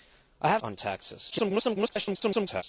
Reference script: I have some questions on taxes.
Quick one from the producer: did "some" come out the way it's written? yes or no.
no